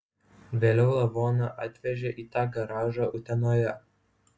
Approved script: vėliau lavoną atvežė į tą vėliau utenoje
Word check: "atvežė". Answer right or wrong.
right